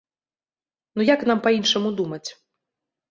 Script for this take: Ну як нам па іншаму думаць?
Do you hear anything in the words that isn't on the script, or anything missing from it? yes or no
no